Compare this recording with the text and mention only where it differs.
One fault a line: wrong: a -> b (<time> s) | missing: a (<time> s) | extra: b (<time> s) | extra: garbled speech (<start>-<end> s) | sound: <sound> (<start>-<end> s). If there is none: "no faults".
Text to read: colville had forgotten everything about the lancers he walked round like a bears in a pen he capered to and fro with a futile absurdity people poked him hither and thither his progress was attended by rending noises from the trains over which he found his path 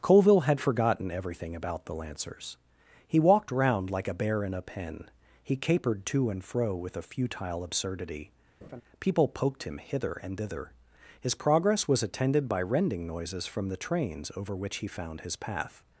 wrong: bears -> bear (4.2 s)
sound: laugh (8.6-8.8 s)